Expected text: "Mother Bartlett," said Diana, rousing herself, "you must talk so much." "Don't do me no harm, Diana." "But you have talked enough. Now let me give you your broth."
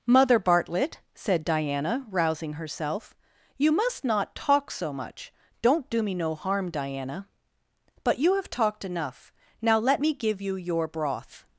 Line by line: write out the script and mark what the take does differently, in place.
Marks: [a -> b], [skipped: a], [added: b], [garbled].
"Mother Bartlett," said Diana, rousing herself, "you must [added: not] talk so much." "Don't do me no harm, Diana." "But you have talked enough. Now let me give you your broth."